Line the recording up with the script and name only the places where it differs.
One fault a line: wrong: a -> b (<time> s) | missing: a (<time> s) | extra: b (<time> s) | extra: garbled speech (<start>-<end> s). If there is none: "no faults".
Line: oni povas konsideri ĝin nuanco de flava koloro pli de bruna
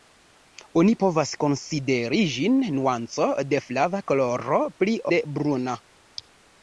no faults